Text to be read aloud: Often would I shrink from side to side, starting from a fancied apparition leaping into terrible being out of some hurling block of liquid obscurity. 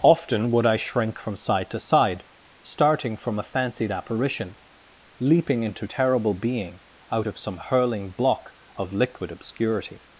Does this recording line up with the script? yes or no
yes